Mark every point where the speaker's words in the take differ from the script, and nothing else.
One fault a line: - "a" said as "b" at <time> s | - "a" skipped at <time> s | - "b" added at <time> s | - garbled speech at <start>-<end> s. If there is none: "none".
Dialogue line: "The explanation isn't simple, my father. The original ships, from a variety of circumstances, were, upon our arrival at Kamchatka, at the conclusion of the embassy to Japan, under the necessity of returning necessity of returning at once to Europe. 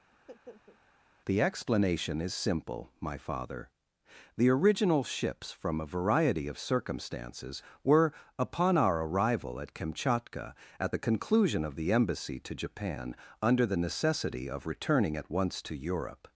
- "isn't" said as "is" at 2.2 s
- "necessity of returning" skipped at 15.2 s